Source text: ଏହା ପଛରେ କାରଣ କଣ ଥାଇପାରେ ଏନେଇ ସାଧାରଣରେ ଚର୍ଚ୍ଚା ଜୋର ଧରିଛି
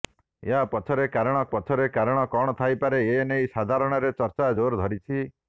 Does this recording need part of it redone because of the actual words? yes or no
yes